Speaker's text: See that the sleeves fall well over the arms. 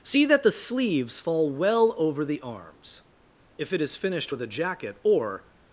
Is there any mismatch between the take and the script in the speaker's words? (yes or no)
yes